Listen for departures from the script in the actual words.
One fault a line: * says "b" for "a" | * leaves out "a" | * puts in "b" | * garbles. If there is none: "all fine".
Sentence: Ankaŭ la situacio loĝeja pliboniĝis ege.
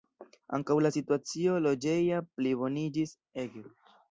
all fine